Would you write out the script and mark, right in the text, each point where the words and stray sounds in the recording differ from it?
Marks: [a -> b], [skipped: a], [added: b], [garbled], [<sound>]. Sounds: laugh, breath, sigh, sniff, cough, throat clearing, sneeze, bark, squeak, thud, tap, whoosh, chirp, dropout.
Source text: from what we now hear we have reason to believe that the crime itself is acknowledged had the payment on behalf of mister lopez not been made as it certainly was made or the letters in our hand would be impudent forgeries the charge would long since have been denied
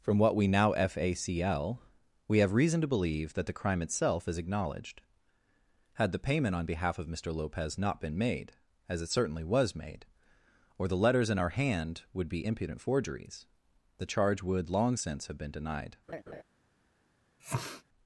from what we now [hear -> facl] we have reason to believe that the crime itself is acknowledged had the payment on behalf of mister lopez not been made as it certainly was made or the letters in our hand would be impudent forgeries the charge would long since have been denied [laugh] [sniff]